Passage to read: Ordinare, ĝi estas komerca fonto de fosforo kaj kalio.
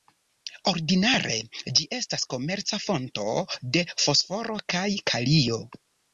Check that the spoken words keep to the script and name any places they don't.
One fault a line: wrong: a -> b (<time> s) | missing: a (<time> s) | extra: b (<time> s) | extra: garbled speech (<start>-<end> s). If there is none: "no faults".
no faults